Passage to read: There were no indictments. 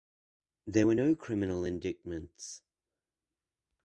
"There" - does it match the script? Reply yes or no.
yes